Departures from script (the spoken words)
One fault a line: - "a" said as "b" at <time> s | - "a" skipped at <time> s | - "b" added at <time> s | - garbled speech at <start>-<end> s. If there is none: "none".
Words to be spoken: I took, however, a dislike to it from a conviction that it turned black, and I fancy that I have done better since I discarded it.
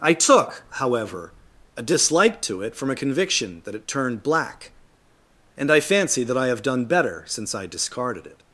none